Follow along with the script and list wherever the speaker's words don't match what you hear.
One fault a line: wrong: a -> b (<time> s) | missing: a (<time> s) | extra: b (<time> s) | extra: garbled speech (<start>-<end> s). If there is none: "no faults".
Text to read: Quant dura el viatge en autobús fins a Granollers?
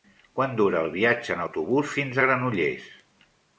no faults